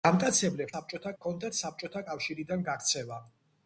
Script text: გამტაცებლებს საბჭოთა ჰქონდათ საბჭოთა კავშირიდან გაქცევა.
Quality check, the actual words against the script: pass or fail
pass